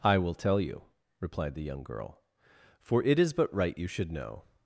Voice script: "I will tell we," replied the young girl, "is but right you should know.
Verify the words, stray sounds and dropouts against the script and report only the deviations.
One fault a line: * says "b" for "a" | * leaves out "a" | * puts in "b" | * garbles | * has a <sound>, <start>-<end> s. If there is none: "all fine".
* says "you" for "we"
* puts in "for it"